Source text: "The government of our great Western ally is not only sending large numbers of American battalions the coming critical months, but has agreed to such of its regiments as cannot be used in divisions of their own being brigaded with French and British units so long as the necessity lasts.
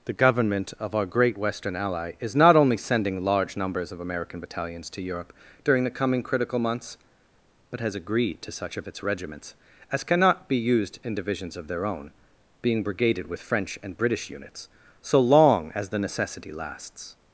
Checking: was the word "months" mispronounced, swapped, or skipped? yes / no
no